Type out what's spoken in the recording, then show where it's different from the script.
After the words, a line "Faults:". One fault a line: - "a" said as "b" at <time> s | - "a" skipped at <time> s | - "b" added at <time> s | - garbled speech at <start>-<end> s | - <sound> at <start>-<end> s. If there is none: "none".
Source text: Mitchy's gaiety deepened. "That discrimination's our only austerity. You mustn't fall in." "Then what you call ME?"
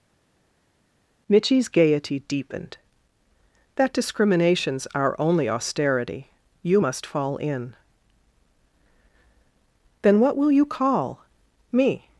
Mitchy's gaiety deepened. "That discrimination's our only austerity. You must fall in." "Then what will you call ME?"
Faults:
- "mustn't" said as "must" at 6.8 s
- "will" added at 10.3 s